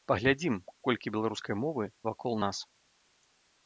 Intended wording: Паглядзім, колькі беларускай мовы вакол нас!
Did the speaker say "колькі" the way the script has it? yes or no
yes